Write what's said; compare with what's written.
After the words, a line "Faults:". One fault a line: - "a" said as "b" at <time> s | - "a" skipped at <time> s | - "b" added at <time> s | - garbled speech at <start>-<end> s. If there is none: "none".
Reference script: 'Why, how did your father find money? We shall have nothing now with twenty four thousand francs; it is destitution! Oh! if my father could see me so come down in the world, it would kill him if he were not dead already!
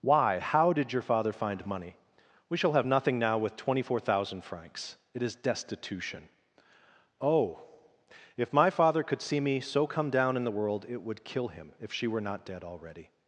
'Why, how did your father find money? We shall have nothing now with twenty four thousand francs; it is destitution! Oh! if my father could see me so come down in the world, it would kill him if she were not dead already!
Faults:
- "he" said as "she" at 11.9 s